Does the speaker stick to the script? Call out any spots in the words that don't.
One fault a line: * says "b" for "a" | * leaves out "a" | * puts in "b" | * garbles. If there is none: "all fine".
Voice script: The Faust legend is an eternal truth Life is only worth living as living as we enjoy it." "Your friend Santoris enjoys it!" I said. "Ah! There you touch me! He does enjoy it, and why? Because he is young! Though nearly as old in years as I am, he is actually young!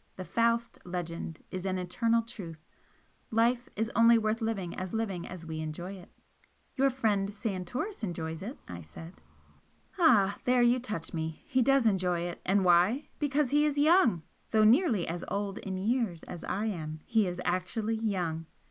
all fine